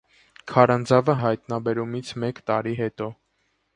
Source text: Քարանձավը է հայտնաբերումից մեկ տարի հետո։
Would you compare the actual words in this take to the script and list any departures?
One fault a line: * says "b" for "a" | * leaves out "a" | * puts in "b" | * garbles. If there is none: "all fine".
all fine